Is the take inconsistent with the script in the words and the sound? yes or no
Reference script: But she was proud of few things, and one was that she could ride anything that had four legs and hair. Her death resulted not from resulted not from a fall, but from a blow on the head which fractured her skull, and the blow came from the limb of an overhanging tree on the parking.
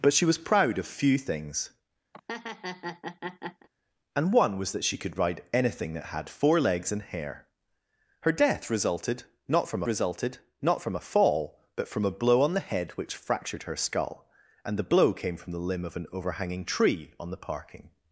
yes